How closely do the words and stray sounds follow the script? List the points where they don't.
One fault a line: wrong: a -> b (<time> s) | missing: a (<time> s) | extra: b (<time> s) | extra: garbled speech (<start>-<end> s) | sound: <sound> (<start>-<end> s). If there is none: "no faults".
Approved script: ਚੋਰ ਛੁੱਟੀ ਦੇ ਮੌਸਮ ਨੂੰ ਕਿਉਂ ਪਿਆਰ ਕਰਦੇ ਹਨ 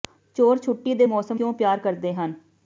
missing: ਨੂੰ (1.4 s)